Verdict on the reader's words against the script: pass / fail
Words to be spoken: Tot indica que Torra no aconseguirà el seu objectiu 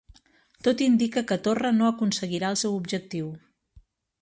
pass